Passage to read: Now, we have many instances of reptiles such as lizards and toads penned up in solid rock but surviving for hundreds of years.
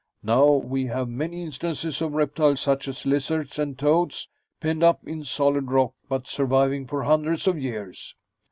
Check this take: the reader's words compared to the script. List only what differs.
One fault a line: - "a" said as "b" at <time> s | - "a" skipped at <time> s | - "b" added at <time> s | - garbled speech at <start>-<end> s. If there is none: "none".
none